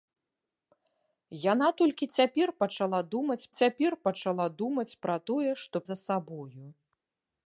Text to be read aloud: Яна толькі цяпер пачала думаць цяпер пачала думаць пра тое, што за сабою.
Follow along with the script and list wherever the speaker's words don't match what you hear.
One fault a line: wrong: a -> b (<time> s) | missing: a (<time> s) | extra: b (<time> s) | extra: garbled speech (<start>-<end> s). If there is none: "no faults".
no faults